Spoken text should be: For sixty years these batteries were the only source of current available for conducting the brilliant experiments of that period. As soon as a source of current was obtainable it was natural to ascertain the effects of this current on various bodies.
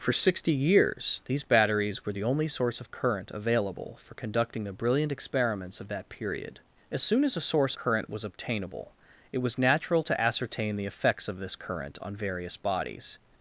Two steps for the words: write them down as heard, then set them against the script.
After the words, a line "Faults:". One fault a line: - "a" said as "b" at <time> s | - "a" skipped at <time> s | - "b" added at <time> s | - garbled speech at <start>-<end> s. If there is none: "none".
For sixty years these batteries were the only source of current available for conducting the brilliant experiments of that period. As soon as a source current was obtainable it was natural to ascertain the effects of this current on various bodies.
Faults:
- "of" skipped at 7.8 s